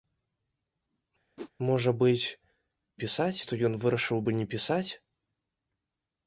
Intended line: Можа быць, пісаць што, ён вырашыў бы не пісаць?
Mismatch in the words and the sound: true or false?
true